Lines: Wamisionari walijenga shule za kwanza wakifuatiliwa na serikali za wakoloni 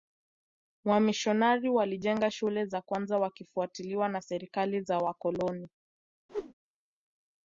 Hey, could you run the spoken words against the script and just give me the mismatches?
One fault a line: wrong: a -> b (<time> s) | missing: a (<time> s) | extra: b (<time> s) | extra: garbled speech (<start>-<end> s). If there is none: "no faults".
no faults